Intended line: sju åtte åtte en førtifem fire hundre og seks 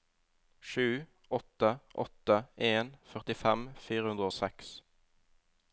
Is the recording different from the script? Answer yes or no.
no